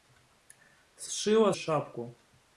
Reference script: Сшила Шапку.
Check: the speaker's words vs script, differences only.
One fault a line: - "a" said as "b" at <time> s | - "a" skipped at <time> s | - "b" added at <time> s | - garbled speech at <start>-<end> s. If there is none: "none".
none